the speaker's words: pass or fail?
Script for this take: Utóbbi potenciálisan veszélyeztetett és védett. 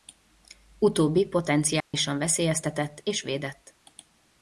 pass